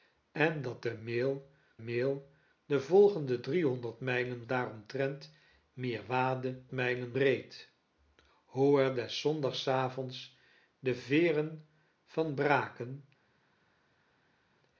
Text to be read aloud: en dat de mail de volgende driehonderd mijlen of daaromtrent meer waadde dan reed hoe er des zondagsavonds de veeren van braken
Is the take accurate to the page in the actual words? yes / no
no